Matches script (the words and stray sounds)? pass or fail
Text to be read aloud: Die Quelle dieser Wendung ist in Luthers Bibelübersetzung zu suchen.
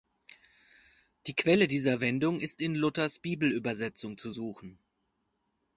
pass